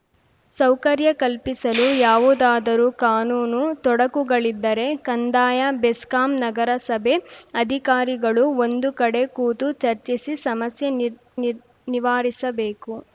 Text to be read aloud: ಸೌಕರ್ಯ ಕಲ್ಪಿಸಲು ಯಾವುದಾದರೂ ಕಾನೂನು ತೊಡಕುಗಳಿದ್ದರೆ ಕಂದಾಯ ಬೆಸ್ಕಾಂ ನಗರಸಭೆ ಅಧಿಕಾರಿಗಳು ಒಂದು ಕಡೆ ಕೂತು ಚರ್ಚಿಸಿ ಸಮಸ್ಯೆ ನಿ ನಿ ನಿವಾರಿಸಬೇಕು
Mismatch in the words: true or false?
false